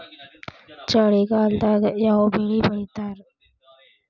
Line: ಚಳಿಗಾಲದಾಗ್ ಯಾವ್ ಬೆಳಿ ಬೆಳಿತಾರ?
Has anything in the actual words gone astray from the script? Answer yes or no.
no